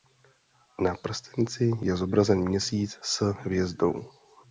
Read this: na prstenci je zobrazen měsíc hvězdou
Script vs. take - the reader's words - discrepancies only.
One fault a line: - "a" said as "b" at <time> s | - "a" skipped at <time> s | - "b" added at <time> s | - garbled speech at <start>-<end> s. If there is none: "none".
- "s" added at 3.0 s